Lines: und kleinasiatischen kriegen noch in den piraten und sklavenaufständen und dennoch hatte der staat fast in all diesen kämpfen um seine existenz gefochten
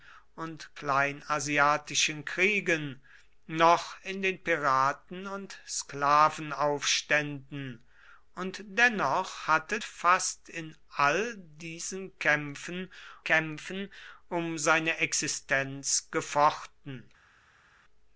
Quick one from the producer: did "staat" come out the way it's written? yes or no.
no